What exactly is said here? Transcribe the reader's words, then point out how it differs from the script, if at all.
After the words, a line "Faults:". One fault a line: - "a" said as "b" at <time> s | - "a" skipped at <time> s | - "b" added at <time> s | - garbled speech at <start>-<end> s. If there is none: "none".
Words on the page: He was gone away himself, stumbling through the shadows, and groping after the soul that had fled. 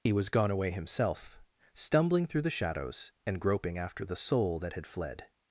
He was gone away himself, stumbling through the shadows, and groping after the soul that had fled.
Faults:
none